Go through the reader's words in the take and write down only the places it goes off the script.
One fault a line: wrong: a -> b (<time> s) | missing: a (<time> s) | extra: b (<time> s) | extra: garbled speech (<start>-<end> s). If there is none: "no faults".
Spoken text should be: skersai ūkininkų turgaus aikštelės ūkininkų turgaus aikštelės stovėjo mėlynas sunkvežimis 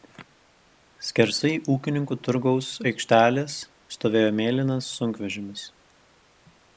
missing: ūkininkų turgaus aikštelės (3.6 s)